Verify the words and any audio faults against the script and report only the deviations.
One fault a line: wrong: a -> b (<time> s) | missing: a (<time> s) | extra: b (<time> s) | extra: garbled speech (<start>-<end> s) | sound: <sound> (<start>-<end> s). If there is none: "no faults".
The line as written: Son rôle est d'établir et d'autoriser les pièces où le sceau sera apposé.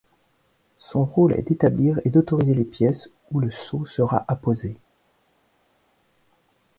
no faults